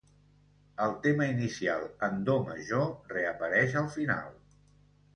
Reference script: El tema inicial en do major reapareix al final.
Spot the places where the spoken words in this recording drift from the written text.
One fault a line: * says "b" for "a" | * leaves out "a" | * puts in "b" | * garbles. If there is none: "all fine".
all fine